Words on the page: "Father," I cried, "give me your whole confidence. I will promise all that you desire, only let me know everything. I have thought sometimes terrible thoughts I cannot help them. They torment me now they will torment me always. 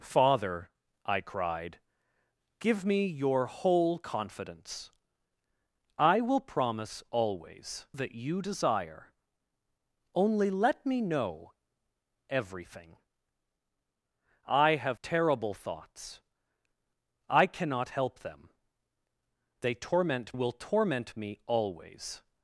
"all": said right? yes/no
no